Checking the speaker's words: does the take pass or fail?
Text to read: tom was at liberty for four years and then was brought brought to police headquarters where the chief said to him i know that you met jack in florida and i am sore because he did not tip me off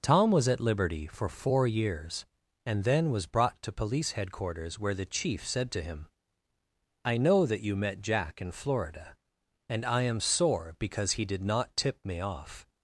fail